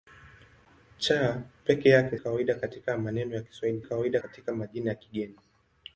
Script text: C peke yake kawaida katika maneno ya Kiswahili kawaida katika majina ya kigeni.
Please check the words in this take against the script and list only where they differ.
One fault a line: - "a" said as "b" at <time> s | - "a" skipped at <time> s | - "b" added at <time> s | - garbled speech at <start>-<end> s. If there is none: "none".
none